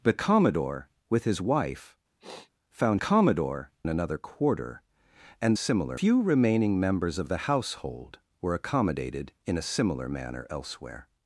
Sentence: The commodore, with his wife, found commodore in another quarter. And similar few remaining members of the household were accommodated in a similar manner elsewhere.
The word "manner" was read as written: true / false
true